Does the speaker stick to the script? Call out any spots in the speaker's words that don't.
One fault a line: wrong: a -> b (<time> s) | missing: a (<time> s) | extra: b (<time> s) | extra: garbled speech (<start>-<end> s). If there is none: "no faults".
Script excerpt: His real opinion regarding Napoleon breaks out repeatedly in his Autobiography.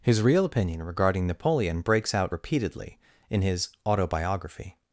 no faults